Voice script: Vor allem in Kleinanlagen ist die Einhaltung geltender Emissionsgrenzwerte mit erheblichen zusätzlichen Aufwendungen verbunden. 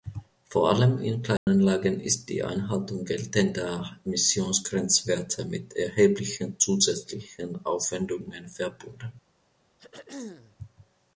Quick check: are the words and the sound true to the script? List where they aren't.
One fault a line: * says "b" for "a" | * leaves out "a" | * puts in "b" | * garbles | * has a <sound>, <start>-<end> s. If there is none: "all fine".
* has a dropout, 1.4-1.5 s
* has a throat clearing, 9.8-10.6 s